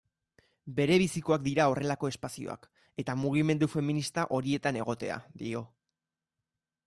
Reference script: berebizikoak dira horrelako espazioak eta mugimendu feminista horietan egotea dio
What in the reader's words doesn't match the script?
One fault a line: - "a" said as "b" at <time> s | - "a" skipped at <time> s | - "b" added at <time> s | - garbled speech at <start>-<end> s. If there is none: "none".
none